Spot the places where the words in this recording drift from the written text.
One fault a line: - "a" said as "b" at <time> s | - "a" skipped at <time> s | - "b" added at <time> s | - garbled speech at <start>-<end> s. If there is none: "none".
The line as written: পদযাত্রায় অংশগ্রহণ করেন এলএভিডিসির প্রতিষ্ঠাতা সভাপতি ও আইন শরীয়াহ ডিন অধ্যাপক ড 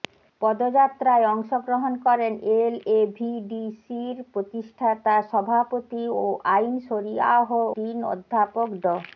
none